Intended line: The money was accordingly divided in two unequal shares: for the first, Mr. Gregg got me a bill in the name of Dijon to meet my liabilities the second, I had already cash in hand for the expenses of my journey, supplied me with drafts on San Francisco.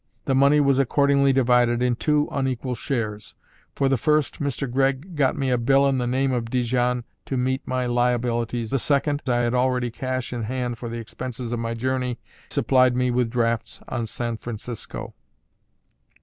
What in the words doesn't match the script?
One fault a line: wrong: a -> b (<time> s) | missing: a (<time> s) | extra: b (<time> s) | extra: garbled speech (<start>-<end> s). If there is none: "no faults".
no faults